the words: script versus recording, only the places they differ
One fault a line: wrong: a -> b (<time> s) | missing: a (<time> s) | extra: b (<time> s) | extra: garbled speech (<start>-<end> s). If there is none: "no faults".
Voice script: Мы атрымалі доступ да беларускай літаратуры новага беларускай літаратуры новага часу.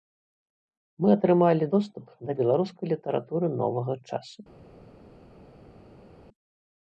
missing: беларускай літаратуры новага (3.9 s)